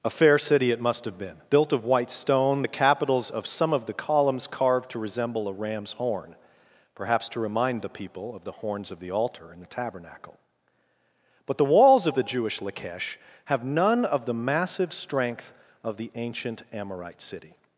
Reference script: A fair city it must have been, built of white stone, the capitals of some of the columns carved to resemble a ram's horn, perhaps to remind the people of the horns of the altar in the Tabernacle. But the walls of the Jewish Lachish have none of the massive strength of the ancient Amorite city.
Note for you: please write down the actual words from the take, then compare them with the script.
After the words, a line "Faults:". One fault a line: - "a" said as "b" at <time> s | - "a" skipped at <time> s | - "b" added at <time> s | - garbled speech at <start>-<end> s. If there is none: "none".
A fair city it must have been, built of white stone, the capitals of some of the columns carved to resemble a ram's horn, perhaps to remind the people of the horns of the altar in the Tabernacle. But the walls of the Jewish Lachish have none of the massive strength of the ancient Amorite city.
Faults:
none